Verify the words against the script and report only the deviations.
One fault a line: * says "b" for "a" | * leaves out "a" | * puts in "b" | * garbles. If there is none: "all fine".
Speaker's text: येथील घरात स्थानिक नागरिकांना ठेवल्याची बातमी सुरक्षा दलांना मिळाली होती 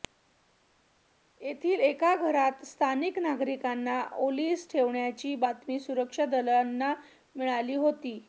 * puts in "एका"
* puts in "ओलीस"